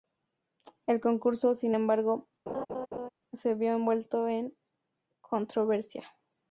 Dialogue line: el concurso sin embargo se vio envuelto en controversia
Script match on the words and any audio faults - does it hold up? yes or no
no